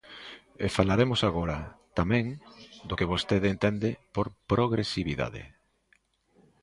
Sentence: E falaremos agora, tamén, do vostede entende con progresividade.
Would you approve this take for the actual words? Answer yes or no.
no